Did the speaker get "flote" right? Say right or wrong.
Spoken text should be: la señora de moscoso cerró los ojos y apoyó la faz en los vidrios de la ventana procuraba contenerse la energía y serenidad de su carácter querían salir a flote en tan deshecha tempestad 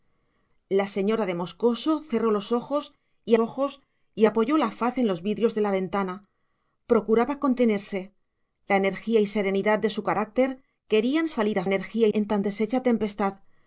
wrong